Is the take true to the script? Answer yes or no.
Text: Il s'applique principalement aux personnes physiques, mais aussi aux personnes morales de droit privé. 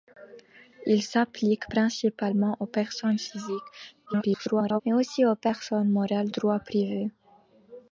no